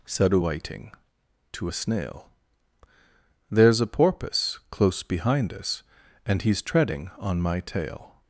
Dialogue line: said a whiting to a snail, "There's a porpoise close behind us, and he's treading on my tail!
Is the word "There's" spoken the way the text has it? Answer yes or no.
yes